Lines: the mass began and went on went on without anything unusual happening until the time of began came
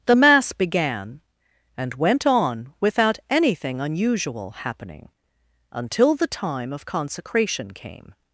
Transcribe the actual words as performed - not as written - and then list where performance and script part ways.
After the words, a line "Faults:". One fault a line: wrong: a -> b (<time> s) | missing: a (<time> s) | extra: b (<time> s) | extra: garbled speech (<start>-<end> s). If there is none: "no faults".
the mass began and went on without anything unusual happening until the time of consecration came
Faults:
missing: went on (2.7 s)
wrong: began -> consecration (6.9 s)